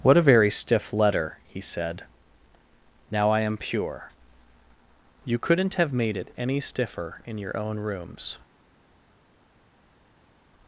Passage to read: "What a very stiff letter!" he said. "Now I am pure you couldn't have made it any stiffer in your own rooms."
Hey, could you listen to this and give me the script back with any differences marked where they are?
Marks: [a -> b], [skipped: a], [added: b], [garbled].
"What a very stiff letter!" he said. "Now I am pure you couldn't have made it any stiffer in your own rooms."